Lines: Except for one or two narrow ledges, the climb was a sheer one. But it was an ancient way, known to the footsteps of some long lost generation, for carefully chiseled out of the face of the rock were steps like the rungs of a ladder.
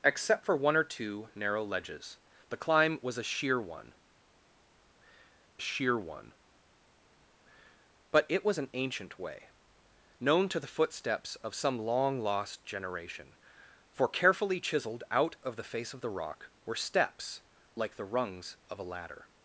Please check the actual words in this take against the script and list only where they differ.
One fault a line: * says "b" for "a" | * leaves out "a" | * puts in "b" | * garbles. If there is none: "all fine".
* puts in "sheer one"